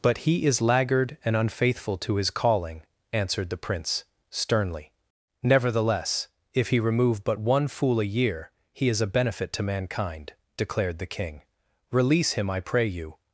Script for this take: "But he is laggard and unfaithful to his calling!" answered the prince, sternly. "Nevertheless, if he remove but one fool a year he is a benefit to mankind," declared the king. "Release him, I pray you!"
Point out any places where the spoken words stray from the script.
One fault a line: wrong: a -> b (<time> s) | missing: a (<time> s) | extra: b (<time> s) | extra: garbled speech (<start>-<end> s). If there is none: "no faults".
no faults